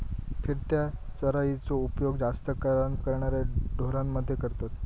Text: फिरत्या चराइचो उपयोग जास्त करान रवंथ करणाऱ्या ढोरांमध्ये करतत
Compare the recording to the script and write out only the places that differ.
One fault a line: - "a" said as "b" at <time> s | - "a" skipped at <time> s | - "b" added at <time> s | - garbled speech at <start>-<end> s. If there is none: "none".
- "रवंथ" skipped at 3.0 s